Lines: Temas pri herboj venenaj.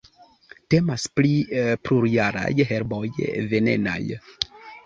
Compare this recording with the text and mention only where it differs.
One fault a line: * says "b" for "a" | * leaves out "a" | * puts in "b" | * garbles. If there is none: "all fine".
* puts in "plurjaraj"